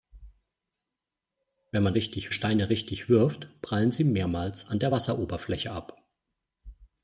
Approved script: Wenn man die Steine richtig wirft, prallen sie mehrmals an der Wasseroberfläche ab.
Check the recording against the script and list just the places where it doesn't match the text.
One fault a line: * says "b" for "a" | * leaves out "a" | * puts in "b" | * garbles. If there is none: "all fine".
* says "richtig" for "die"